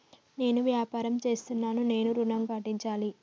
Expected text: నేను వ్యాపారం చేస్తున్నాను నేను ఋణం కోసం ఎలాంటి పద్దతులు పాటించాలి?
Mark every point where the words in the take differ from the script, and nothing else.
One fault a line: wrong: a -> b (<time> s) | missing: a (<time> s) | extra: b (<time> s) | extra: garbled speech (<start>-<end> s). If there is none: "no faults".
missing: కోసం ఎలాంటి పద్దతులు (2.4 s)